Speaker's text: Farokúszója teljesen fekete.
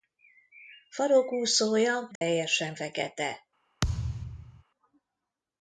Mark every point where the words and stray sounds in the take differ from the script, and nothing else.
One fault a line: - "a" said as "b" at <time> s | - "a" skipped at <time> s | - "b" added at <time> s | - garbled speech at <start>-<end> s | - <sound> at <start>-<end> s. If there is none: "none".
- dropout at 2.2-2.2 s
- thud at 3.8-4.6 s